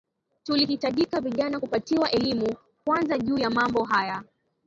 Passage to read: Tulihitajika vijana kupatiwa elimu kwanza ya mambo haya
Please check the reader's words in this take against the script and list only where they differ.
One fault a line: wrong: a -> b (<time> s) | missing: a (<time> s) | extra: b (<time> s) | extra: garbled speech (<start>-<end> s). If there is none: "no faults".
extra: juu (3.2 s)